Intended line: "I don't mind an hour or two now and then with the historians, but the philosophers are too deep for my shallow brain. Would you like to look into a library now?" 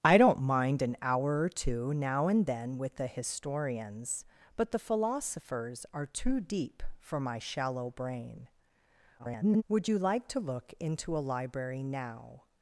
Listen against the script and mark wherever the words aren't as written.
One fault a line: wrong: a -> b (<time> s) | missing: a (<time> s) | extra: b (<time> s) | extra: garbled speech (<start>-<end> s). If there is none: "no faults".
extra: garbled speech (9.2-9.6 s)